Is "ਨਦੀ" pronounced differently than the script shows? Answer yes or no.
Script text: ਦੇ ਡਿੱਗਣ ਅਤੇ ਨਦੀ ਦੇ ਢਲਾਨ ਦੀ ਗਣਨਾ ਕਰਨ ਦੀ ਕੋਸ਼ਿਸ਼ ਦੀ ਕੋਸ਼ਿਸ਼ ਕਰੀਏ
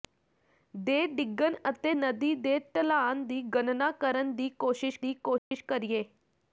no